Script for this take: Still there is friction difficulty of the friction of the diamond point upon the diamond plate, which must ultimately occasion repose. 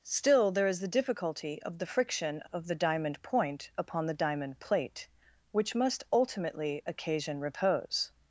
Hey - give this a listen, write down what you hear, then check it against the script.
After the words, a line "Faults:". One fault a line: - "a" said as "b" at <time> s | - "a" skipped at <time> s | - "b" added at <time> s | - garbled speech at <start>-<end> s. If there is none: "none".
Still there is the difficulty of the friction of the diamond point upon the diamond plate, which must ultimately occasion repose.
Faults:
- "friction" said as "the" at 0.8 s